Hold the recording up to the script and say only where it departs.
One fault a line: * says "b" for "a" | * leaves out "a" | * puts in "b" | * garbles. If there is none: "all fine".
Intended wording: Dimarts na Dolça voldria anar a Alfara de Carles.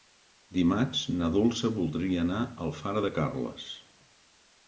all fine